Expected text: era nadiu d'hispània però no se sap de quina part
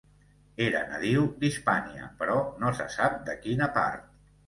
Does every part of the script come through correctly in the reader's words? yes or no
yes